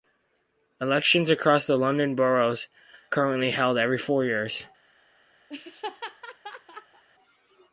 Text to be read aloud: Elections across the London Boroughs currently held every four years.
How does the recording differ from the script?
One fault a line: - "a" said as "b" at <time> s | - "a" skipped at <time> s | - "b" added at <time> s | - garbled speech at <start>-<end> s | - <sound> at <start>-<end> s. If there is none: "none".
- laugh at 5.5-7.0 s